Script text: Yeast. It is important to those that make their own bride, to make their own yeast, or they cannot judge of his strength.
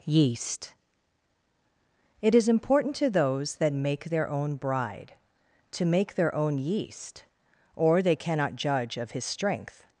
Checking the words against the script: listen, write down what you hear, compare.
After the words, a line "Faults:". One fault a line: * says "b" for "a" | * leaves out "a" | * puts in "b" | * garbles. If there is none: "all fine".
Yeast. It is important to those that make their own bride, to make their own yeast, or they cannot judge of his strength.
Faults:
all fine